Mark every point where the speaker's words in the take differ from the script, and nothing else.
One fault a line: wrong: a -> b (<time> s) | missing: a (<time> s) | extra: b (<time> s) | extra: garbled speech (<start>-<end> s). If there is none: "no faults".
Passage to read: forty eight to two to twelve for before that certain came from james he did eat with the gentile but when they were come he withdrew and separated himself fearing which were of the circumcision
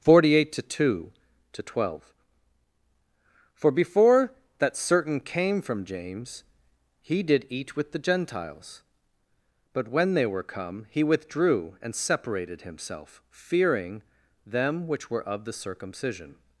wrong: gentile -> gentiles (8.0 s)
extra: them (14.4 s)